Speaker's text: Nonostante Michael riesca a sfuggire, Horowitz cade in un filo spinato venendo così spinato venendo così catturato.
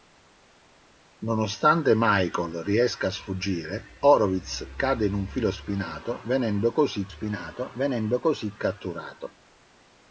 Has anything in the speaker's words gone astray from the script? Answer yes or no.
no